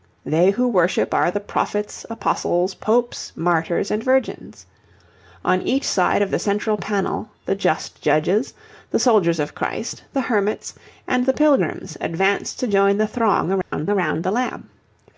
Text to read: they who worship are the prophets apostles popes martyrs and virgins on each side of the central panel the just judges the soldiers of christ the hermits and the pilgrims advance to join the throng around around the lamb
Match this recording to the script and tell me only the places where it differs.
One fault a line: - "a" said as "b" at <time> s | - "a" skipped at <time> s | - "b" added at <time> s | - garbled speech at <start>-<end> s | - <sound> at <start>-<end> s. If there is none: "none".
- dropout at 13.6-13.7 s